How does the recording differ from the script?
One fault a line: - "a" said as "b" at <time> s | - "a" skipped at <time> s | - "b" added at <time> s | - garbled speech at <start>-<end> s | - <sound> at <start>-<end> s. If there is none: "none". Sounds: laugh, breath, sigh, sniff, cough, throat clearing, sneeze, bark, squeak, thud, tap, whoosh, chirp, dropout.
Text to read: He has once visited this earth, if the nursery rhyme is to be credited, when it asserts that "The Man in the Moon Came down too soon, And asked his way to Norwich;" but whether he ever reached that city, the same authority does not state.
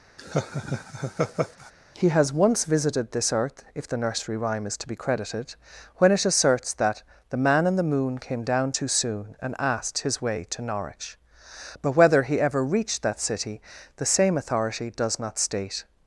- laugh at 0.2-1.7 s